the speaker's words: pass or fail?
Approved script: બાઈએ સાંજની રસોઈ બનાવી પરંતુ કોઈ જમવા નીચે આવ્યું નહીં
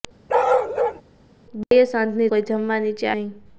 fail